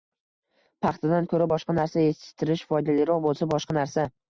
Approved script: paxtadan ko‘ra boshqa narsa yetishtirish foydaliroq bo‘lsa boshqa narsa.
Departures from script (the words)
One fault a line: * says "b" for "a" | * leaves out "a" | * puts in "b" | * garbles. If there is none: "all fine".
all fine